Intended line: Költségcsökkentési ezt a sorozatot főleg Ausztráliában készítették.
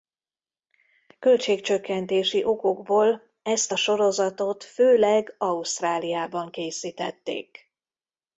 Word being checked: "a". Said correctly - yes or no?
yes